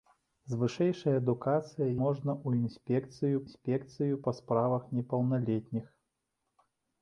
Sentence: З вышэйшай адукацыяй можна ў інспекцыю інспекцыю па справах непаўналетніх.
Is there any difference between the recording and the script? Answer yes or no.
no